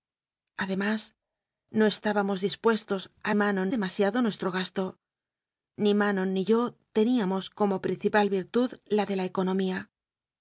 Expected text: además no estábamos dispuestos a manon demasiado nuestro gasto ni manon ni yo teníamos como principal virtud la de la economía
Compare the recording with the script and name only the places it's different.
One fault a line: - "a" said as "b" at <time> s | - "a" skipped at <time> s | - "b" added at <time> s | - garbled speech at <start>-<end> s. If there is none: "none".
none